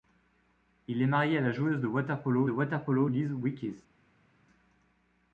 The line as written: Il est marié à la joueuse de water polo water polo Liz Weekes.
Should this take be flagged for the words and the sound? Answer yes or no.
no